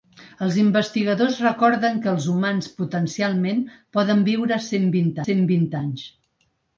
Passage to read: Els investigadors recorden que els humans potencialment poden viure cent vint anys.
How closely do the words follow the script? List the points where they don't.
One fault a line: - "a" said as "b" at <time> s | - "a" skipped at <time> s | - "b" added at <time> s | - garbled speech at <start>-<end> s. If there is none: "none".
- "cent vint" added at 5.3 s